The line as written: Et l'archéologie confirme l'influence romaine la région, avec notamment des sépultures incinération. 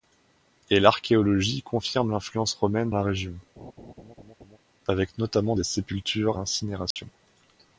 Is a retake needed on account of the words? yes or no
no